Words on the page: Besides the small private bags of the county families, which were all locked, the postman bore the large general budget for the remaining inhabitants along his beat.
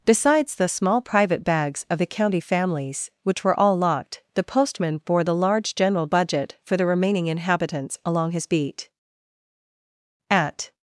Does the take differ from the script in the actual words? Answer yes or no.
yes